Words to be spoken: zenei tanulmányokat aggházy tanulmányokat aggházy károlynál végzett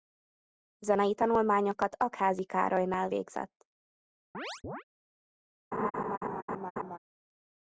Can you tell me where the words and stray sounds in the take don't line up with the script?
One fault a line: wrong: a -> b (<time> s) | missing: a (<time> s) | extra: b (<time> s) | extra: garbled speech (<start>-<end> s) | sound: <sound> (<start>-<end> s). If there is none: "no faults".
missing: tanulmányokat aggházy (2.4 s)
sound: chirp (4.3-4.8 s)
sound: laugh (5.7-7.0 s)